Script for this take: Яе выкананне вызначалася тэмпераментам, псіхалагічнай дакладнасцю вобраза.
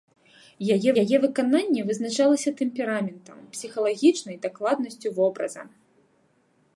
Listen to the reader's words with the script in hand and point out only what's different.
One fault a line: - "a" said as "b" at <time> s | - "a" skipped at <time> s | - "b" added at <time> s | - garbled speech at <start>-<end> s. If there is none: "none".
- "яе" added at 1.0 s